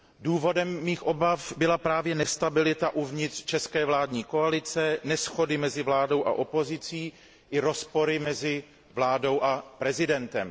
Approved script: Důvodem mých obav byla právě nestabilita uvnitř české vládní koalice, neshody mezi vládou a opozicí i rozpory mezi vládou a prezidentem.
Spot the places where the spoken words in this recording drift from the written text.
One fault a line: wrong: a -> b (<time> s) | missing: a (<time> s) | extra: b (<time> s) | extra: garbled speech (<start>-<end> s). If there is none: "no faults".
no faults